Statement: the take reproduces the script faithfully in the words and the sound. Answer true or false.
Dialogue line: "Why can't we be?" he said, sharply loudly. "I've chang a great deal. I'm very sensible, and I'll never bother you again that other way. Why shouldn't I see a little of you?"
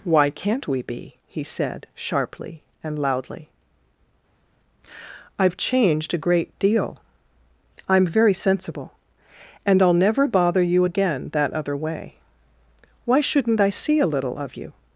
false